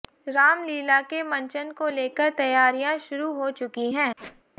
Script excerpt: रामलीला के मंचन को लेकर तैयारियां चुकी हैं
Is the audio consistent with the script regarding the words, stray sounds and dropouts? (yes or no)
no